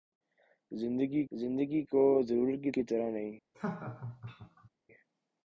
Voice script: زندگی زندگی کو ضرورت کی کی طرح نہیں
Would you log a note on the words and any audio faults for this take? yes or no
yes